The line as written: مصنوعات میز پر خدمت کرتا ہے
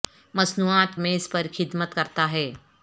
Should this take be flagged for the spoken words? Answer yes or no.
no